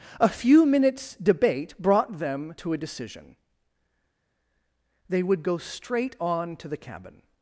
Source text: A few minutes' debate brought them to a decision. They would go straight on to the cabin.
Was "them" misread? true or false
false